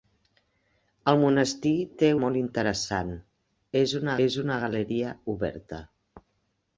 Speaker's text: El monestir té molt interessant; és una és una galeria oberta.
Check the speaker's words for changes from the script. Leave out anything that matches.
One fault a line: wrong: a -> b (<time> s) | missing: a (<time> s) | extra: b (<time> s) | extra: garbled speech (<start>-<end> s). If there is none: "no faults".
no faults